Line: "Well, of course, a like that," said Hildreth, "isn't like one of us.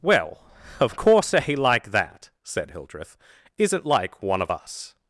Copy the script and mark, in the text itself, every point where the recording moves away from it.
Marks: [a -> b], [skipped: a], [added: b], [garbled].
"Well, of course, a like that," said Hildreth, "isn't like one of us.